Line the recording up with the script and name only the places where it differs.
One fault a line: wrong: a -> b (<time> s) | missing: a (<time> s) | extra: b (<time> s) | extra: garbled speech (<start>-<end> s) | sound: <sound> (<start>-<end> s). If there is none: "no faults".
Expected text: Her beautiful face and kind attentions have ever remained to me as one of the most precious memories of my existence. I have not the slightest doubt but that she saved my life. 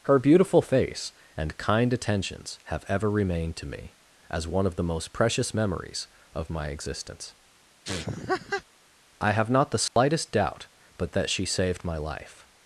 sound: laugh (7.8-8.6 s)
sound: dropout (9.9-10.0 s)